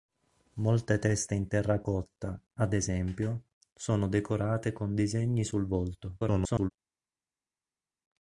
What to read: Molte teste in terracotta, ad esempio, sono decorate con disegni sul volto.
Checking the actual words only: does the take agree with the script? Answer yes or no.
no